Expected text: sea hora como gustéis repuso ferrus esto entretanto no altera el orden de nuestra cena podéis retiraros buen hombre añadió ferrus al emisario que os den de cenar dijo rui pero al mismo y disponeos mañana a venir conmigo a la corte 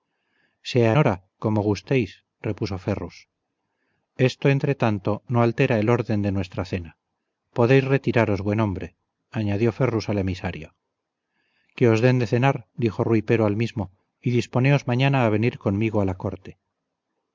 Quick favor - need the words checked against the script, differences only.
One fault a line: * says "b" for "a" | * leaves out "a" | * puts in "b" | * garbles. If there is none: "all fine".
all fine